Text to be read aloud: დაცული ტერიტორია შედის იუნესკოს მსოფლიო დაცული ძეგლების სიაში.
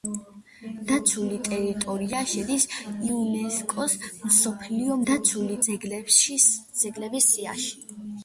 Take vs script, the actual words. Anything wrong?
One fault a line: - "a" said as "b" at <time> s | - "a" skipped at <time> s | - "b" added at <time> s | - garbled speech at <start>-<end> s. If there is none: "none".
none